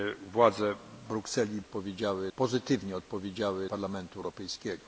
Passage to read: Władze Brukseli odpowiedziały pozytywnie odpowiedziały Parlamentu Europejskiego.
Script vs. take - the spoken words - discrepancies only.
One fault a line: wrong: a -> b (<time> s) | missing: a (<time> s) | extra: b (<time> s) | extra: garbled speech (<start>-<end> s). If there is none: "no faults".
no faults